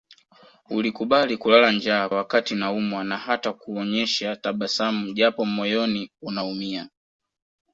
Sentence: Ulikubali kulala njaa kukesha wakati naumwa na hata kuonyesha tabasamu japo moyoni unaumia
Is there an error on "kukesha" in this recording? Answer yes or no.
yes